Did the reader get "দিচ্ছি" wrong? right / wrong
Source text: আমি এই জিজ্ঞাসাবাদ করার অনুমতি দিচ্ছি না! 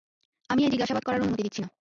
right